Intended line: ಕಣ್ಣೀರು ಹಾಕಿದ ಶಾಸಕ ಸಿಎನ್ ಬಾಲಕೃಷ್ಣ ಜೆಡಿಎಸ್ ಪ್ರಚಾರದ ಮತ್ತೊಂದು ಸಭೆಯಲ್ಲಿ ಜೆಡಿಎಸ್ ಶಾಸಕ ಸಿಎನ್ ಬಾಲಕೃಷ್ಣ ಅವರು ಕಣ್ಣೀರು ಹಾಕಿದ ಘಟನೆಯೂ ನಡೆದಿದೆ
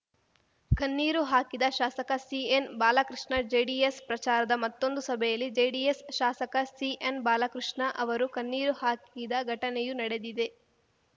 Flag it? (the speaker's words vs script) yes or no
no